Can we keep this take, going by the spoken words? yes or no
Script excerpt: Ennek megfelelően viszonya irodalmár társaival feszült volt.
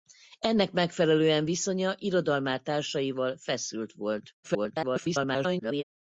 no